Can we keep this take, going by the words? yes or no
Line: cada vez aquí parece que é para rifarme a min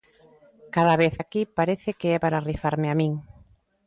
yes